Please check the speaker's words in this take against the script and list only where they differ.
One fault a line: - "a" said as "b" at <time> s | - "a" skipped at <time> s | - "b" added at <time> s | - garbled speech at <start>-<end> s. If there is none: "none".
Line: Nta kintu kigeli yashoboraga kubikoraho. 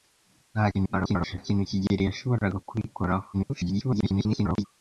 - garbled speech at 0.7-1.4 s
- garbled speech at 3.3-4.7 s